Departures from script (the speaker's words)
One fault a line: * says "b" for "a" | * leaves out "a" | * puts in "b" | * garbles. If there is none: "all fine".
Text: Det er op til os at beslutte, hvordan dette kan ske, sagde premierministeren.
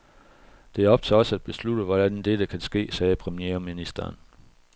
all fine